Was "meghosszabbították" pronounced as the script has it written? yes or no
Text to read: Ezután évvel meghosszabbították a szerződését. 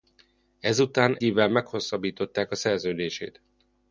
yes